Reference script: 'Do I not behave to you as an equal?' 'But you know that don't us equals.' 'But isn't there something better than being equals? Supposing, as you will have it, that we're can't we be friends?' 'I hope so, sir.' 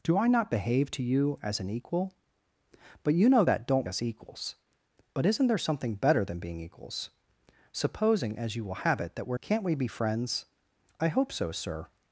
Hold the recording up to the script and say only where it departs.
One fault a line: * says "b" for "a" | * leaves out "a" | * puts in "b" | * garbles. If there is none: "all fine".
all fine